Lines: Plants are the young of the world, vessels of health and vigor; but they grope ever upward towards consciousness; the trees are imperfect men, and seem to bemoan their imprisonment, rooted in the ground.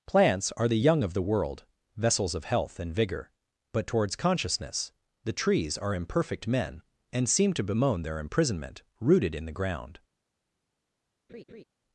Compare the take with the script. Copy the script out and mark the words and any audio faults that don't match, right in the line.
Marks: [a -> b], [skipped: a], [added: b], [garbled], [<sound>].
Plants are the young of the world, vessels of health and vigor; but [skipped: they grope ever upward] towards consciousness; the trees are imperfect men, and seem to bemoan their imprisonment, rooted in the ground. [laugh]